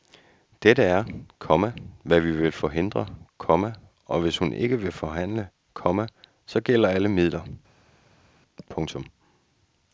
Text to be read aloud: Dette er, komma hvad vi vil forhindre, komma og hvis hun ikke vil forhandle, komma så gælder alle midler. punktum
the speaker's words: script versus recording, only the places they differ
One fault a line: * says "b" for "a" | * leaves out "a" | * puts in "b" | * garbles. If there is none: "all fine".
all fine